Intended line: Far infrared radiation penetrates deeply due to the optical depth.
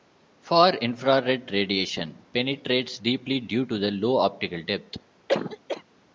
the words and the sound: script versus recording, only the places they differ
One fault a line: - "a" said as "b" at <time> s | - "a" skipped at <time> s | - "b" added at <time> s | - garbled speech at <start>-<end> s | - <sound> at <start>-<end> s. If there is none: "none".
- "low" added at 3.9 s
- cough at 5.3-5.8 s